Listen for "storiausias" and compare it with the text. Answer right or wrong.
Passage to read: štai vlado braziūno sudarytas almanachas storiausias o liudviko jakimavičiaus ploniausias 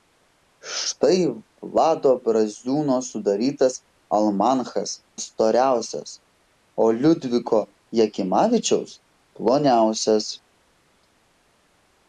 right